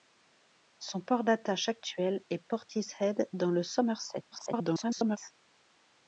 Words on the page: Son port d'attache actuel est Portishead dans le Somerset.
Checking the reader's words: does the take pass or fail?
fail